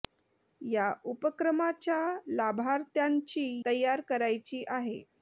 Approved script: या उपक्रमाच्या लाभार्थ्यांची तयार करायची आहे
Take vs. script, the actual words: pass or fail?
pass